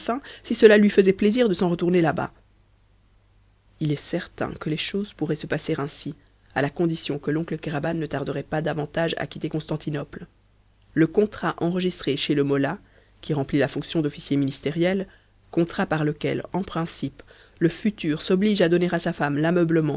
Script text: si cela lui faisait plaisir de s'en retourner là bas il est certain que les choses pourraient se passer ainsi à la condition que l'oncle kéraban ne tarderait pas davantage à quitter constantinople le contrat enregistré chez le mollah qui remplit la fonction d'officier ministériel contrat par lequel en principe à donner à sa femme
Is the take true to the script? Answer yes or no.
no